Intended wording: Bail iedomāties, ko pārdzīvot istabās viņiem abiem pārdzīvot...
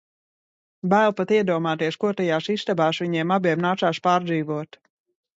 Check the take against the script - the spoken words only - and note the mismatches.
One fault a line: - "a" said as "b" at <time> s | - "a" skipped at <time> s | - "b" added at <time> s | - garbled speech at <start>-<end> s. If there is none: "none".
- "pat" added at 1.2 s
- "pārdzīvot" said as "tajās" at 2.2 s
- "nācās" added at 3.7 s